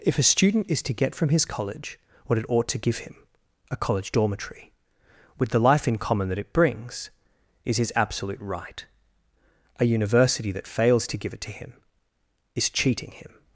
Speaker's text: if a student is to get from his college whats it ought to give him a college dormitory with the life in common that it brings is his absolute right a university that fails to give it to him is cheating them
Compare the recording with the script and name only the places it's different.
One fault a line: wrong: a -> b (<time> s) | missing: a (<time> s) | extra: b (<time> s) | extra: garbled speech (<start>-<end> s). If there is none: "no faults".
wrong: whats -> what (2.2 s)
wrong: them -> him (13.1 s)